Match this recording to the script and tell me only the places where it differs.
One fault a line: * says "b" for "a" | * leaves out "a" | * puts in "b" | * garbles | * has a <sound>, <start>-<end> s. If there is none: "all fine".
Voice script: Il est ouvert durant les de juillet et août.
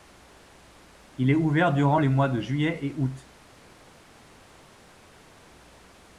* puts in "mois"